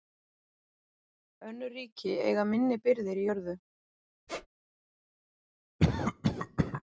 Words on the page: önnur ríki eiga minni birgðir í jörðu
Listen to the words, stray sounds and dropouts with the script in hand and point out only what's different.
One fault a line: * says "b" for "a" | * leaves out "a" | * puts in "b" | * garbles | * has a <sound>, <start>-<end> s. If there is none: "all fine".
* has a squeak, 4.3-4.5 s
* has a cough, 5.8-6.8 s